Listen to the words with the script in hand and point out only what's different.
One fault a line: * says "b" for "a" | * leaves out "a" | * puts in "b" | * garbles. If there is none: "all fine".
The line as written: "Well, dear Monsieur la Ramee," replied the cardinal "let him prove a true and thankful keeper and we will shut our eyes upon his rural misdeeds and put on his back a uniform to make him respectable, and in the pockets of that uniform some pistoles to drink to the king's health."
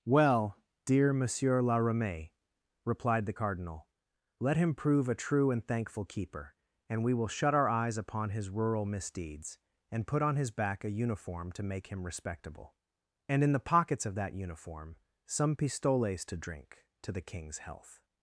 all fine